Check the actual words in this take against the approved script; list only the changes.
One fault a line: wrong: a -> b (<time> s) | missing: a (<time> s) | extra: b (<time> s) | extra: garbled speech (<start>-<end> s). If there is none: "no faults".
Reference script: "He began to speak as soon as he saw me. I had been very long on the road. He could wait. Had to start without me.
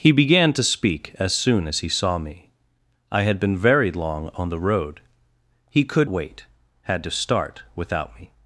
no faults